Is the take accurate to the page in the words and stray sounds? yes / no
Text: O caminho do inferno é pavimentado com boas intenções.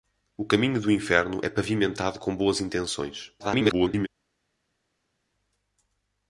no